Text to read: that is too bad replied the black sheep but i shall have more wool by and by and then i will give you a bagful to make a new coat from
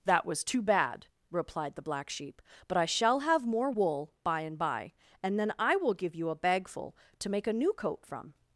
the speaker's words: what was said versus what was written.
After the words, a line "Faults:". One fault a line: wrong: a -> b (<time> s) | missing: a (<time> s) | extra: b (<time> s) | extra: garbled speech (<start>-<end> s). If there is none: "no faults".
that was too bad replied the black sheep but i shall have more wool by and by and then i will give you a bagful to make a new coat from
Faults:
wrong: is -> was (0.2 s)